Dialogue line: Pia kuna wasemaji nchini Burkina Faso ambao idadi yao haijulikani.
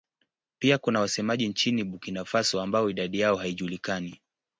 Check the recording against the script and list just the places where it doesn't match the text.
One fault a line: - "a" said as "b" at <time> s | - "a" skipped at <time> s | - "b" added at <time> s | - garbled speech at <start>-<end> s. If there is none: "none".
none